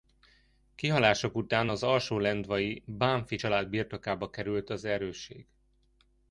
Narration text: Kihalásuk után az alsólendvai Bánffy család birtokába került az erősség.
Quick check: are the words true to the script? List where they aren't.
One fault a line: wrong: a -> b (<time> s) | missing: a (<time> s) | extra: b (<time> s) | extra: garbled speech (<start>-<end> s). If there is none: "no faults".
no faults